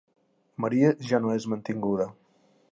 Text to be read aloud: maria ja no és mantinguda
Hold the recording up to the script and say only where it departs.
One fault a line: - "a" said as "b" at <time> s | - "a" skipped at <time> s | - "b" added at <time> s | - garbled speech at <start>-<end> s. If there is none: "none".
none